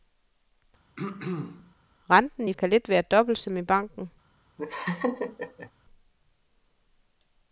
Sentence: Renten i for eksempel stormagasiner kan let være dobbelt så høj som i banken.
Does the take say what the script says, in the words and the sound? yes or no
no